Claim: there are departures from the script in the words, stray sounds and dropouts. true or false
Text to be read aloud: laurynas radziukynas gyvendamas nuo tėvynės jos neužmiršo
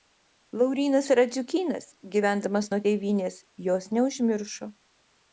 false